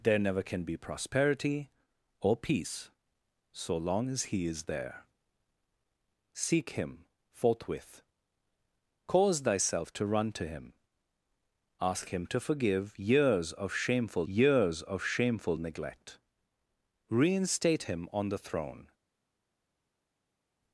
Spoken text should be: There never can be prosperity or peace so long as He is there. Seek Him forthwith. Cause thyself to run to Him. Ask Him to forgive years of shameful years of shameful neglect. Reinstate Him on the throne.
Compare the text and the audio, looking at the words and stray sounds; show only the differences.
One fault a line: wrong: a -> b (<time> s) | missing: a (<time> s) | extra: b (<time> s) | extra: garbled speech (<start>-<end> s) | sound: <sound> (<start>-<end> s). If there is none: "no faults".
no faults